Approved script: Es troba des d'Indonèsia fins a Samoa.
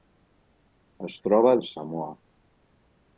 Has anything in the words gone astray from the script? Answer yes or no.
yes